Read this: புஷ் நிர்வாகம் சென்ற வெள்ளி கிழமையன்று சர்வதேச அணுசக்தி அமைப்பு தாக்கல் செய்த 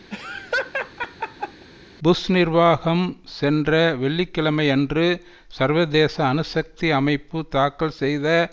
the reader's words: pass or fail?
pass